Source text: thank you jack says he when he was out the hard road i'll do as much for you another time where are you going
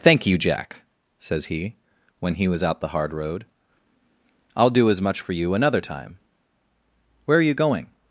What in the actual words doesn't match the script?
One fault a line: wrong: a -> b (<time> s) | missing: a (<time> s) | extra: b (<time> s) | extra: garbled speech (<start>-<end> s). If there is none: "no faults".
no faults